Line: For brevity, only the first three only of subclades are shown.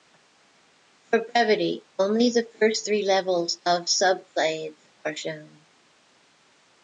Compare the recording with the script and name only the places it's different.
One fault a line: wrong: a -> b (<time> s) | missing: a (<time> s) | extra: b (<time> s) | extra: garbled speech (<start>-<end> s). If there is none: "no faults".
wrong: only -> levels (3.0 s)